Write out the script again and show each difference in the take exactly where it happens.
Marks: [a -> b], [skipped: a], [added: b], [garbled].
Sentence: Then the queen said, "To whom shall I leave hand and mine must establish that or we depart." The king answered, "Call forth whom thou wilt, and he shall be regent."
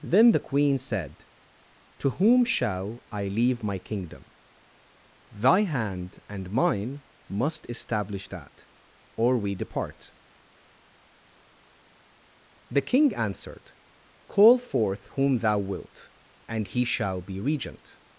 Then the queen said, "To whom shall I leave [added: my kingdom Thy] hand and mine must establish that or we depart." The king answered, "Call forth whom thou wilt, and he shall be regent."